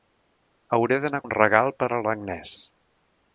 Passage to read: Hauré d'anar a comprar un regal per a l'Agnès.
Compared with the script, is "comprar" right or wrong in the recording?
wrong